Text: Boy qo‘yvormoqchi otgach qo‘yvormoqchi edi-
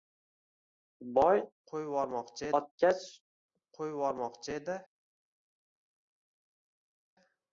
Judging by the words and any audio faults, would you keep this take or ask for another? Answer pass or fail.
pass